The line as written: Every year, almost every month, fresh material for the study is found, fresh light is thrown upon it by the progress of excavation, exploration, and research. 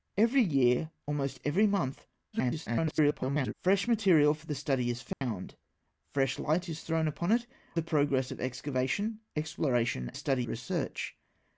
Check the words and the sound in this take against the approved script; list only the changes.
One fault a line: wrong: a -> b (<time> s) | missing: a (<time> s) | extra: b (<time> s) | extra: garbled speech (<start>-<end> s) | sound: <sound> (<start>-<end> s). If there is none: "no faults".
extra: garbled speech (2.3-3.5 s)
sound: dropout (5.1-5.2 s)
missing: by (7.5 s)
wrong: and -> study (10.1 s)